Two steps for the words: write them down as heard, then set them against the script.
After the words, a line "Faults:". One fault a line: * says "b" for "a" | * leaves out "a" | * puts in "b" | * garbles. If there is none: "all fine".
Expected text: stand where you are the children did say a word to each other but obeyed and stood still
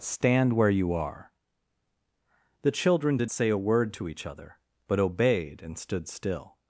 stand where you are the children did say a word to each other but obeyed and stood still
Faults:
all fine